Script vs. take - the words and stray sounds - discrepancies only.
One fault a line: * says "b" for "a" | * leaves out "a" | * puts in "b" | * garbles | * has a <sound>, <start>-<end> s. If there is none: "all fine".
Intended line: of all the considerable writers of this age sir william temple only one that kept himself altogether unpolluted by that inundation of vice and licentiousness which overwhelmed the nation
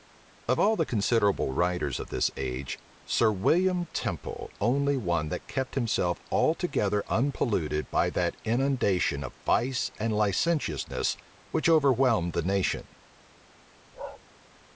* has a bark, 13.9-14.2 s